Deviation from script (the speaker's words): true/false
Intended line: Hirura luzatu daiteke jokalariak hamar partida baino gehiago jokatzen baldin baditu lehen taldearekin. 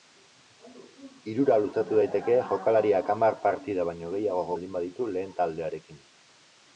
true